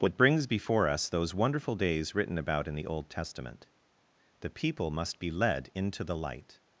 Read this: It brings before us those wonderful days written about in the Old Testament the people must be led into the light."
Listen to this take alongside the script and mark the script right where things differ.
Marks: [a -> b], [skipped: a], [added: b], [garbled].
[It -> What] brings before us those wonderful days written about in the Old Testament the people must be led into the light."